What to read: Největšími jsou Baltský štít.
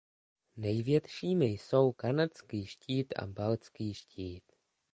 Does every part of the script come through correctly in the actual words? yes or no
no